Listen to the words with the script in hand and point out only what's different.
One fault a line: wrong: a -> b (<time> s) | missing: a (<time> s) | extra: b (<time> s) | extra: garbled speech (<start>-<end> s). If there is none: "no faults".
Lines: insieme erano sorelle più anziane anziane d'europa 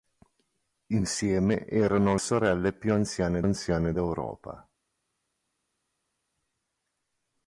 no faults